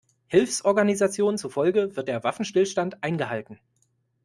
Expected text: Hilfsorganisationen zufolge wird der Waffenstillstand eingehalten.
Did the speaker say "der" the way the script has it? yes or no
yes